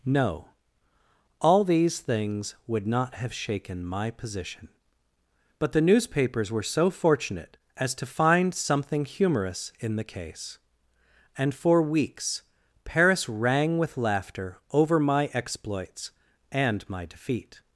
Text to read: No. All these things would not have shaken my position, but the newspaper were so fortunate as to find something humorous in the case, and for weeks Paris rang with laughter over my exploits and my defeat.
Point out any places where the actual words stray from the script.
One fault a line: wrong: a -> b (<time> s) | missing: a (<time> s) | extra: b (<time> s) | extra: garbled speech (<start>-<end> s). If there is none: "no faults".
wrong: newspaper -> newspapers (5.8 s)